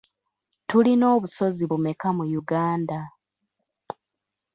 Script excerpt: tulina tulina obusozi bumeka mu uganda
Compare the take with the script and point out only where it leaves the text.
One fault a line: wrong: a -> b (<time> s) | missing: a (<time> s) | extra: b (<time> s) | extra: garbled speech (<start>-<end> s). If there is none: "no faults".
missing: tulina (1.1 s)